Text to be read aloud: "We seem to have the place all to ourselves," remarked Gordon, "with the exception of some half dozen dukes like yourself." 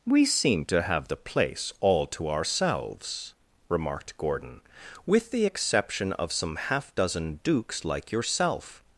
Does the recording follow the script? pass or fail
pass